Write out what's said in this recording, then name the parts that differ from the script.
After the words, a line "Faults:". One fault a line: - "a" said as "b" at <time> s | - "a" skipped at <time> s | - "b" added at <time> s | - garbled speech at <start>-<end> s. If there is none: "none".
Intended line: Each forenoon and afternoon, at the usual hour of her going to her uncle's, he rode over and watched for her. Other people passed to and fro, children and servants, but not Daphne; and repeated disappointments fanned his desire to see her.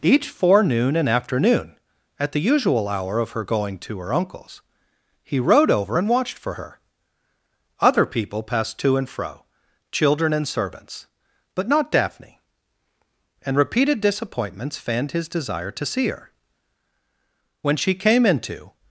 Each forenoon and afternoon, at the usual hour of her going to her uncle's, he rode over and watched for her. Other people passed to and fro, children and servants, but not Daphne; and repeated disappointments fanned his desire to see her. When she came into
Faults:
- "When she came into" added at 17.6 s